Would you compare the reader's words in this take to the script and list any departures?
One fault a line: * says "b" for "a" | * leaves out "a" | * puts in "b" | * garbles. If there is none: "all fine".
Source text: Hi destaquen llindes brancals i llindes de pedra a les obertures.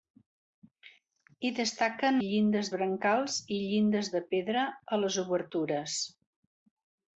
all fine